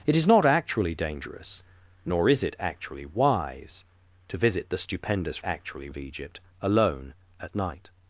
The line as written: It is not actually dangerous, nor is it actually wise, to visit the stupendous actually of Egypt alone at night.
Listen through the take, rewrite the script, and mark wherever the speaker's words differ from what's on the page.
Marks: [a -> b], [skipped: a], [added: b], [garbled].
It is not actually dangerous, nor is it actually wise, to visit the stupendous actually of Egypt alone at night.